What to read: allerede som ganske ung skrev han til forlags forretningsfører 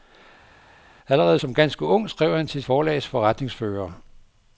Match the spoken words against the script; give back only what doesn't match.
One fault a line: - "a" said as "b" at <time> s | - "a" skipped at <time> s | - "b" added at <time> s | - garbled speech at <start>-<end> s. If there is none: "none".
none